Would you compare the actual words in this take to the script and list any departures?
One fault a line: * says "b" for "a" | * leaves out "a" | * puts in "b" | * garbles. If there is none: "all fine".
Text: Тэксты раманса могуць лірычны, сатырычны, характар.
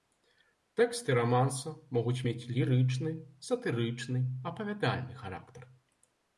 * puts in "мець"
* puts in "апавядальны"